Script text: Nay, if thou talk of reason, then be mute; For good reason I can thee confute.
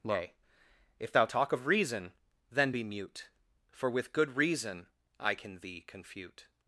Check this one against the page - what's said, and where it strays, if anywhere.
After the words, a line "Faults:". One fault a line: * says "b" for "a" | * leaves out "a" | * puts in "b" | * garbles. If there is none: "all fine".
Nay, if thou talk of reason, then be mute; For with good reason I can thee confute.
Faults:
* puts in "with"